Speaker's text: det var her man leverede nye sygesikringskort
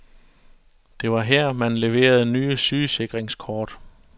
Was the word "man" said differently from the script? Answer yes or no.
no